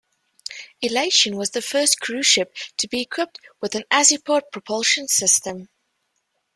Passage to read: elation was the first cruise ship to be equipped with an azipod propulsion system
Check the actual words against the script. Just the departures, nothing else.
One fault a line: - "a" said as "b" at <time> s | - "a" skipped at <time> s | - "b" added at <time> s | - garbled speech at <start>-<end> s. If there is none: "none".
none